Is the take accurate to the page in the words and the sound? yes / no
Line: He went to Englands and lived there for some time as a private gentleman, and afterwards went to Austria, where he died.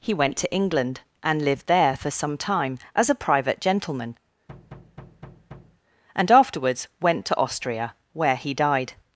no